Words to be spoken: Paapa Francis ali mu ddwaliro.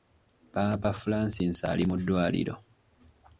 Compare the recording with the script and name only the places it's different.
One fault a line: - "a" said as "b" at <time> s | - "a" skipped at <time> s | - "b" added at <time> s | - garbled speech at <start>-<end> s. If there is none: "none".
none